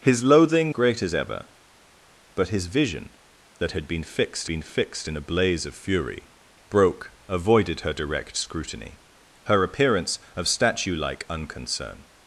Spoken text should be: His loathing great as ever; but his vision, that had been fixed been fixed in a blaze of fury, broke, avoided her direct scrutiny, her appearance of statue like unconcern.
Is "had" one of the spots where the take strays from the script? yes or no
no